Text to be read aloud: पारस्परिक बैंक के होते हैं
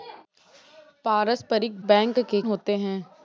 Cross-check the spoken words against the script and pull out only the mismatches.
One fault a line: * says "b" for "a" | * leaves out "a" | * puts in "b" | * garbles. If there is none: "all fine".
all fine